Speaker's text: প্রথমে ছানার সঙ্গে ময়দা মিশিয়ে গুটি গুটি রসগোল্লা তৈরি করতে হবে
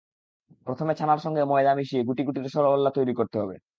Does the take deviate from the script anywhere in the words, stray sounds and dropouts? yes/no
no